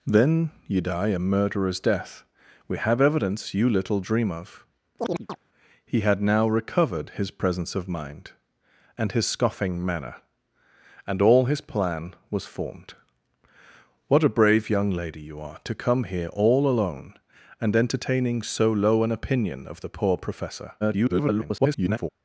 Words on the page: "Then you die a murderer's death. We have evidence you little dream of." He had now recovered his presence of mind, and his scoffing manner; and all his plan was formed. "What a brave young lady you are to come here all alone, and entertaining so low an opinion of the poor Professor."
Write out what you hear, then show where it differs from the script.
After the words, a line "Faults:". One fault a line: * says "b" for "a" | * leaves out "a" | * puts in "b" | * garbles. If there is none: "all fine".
"Then you die a murderer's death. We have evidence you little dream of." He had now recovered his presence of mind, and his scoffing manner; and all his plan was formed. "What a brave young lady you are to come here all alone, and entertaining so low an opinion of the poor Professor." [garbled]
Faults:
* garbles